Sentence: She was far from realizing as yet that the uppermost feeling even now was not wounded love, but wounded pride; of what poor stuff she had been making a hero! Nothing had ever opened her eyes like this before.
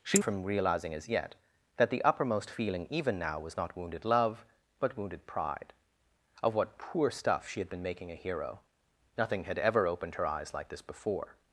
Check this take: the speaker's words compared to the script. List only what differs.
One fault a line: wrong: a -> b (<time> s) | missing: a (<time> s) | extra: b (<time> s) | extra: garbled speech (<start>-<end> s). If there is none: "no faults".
missing: was far (0.2 s)